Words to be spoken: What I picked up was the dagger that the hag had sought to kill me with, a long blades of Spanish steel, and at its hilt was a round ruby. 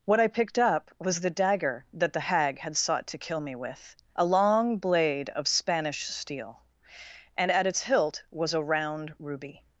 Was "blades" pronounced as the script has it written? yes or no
no